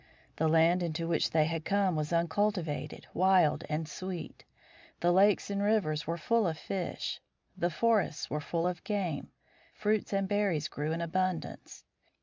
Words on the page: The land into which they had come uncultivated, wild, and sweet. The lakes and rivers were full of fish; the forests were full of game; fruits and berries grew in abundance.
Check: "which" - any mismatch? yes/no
no